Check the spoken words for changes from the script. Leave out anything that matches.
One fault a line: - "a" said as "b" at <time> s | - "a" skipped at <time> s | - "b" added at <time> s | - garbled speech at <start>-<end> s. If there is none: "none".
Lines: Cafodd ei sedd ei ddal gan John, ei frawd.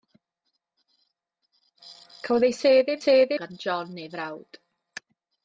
- "ddal" said as "sedd" at 3.0 s